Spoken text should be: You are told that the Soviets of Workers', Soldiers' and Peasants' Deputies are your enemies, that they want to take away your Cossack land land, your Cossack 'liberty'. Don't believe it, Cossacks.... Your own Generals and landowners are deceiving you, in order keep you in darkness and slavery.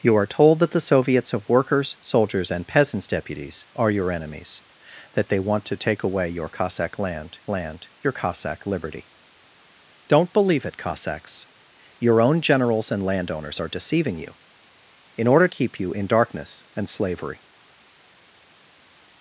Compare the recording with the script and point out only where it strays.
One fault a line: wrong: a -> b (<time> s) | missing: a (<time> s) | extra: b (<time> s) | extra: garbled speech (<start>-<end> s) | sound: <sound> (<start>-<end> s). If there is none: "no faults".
no faults